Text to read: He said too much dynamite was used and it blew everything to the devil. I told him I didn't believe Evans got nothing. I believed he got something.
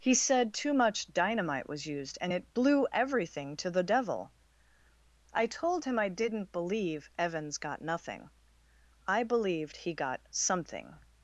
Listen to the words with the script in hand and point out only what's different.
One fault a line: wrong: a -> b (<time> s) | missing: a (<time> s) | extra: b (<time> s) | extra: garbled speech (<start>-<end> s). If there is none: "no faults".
no faults